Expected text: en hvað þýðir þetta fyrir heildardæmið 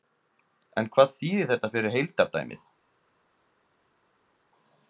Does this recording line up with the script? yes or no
yes